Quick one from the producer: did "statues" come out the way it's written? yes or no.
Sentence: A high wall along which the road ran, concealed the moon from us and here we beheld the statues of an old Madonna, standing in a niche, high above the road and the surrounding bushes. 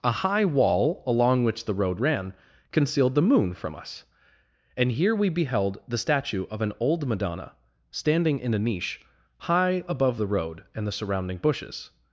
no